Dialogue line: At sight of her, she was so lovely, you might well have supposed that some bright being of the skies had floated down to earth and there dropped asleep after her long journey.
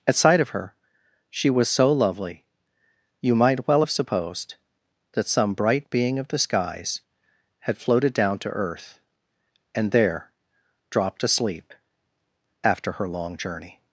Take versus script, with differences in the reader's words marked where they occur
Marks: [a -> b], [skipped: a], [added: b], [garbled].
At sight of her, she was so lovely, you might well have supposed that some bright being of the skies had floated down to earth and there dropped asleep after her long journey.